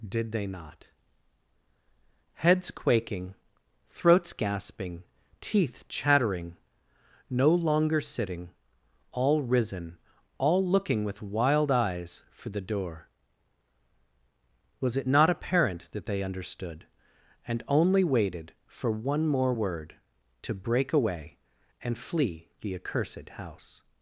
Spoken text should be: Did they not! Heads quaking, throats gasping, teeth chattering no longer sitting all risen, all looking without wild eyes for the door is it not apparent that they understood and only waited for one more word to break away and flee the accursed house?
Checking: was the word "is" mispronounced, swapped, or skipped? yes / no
yes